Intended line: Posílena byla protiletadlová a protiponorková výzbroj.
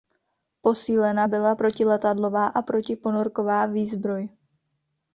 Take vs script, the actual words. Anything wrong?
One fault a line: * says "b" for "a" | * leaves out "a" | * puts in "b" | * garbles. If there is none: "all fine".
all fine